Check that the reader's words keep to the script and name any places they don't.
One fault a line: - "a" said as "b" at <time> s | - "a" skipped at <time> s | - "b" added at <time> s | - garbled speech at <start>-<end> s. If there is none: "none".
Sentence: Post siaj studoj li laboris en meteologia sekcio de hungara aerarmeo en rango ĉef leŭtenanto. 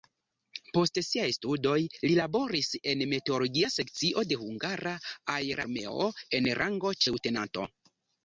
- "ĉef" skipped at 7.0 s